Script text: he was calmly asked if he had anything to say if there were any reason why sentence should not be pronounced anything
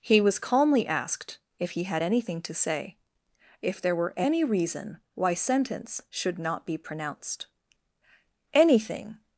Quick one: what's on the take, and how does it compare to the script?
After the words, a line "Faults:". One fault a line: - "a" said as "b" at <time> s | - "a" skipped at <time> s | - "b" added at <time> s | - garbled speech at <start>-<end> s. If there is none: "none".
he was calmly asked if he had anything to say if there were any reason why sentence should not be pronounced anything
Faults:
none